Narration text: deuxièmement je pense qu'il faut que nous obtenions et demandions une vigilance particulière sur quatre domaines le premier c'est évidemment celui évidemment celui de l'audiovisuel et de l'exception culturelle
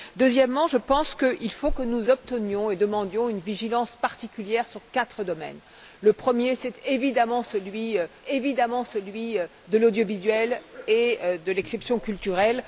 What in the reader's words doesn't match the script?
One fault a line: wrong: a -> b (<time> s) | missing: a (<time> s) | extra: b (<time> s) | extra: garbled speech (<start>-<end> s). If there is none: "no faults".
no faults